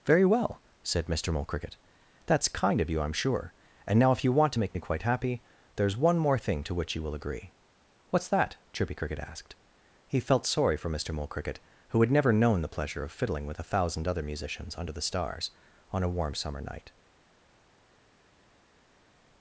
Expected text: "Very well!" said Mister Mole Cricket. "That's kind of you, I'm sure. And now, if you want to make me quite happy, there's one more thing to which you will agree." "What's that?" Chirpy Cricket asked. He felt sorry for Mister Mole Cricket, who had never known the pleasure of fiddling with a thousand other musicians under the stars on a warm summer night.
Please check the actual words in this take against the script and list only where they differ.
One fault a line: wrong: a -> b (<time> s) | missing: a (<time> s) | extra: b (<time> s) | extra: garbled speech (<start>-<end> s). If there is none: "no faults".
no faults